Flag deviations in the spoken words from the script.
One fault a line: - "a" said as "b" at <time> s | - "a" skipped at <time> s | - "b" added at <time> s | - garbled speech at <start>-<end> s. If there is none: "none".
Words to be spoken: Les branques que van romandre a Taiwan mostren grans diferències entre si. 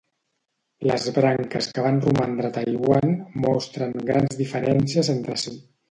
none